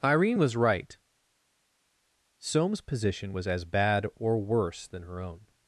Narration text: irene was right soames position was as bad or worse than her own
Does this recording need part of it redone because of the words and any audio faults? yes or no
no